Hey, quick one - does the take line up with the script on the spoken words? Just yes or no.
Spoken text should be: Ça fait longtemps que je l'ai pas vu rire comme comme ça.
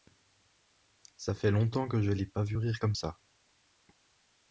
no